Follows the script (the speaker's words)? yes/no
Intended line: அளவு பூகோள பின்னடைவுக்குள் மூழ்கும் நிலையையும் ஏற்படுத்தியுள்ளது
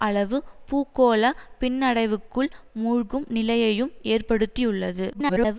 no